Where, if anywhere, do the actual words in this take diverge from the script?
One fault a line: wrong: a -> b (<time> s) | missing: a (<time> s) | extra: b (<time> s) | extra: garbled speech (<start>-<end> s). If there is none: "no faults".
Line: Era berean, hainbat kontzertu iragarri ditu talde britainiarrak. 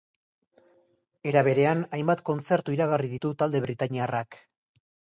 no faults